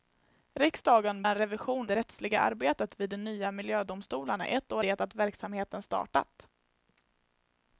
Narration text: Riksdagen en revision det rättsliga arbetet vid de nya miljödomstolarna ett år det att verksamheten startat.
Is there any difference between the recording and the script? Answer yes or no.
no